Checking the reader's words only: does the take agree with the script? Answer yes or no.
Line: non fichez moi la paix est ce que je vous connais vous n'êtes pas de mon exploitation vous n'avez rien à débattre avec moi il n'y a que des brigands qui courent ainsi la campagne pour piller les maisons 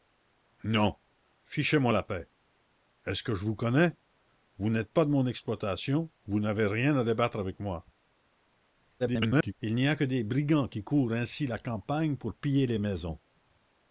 no